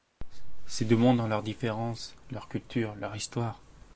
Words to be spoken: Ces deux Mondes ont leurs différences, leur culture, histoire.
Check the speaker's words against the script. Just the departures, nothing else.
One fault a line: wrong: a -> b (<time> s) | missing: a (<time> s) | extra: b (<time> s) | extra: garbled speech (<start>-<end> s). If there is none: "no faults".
extra: leur (3.0 s)